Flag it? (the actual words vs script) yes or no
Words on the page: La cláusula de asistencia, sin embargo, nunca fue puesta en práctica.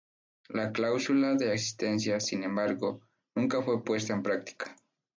no